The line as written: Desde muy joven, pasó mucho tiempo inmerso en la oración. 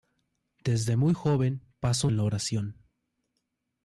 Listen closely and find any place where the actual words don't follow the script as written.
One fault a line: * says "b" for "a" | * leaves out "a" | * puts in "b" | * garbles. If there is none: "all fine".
* leaves out "mucho tiempo inmerso"